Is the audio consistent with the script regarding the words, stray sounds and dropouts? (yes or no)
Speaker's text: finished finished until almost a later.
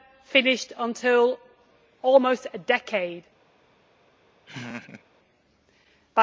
no